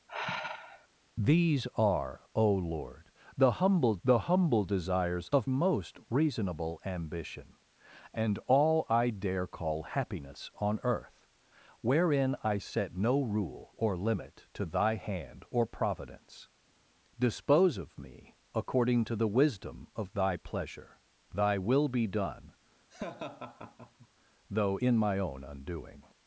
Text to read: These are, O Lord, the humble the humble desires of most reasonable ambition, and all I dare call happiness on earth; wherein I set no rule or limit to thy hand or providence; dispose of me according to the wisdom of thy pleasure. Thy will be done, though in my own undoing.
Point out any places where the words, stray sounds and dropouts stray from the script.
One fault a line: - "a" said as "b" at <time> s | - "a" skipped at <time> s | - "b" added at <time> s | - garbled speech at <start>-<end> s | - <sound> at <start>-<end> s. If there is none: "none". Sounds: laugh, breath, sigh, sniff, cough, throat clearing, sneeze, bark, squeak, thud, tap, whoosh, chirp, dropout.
- sigh at 0.1-0.9 s
- laugh at 22.9-24.1 s